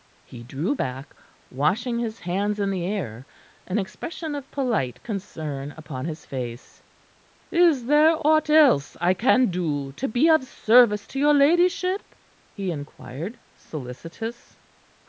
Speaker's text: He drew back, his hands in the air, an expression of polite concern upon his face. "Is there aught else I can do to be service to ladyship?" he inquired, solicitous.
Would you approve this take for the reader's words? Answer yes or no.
no